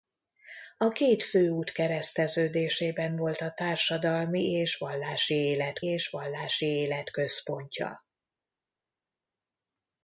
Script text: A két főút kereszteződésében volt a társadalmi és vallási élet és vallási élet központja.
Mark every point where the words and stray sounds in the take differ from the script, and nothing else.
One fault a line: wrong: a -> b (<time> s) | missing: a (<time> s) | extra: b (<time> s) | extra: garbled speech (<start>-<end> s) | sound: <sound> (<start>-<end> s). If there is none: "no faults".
no faults